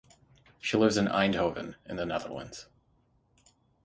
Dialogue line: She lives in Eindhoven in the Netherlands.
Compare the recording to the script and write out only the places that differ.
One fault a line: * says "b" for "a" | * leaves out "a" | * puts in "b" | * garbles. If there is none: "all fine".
all fine